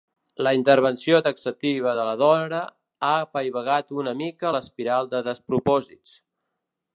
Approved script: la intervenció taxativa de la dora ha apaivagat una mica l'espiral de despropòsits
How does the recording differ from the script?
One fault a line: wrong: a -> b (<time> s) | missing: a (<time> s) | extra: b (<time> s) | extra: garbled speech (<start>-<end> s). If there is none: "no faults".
no faults